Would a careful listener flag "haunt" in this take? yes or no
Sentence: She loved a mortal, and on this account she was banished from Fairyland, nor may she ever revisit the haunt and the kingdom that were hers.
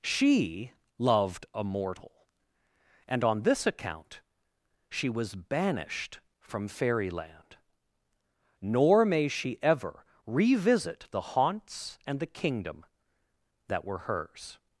yes